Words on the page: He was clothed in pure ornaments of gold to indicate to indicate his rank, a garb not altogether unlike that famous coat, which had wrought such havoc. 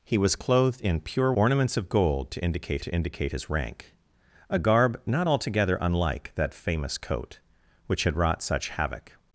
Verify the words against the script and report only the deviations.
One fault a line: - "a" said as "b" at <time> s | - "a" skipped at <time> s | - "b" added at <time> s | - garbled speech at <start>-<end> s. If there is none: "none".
none